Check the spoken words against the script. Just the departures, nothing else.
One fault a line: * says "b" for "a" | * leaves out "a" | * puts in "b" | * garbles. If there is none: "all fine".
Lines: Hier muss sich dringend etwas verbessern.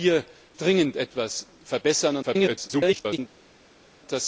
* leaves out "muss sich"
* garbles